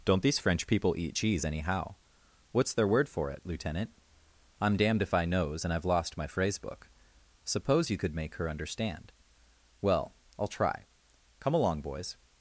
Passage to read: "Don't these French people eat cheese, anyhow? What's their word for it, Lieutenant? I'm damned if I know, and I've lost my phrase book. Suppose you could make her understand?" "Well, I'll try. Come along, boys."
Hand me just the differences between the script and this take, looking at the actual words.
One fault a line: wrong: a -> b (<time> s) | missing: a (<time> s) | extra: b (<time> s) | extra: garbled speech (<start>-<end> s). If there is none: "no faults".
wrong: know -> knows (5.3 s)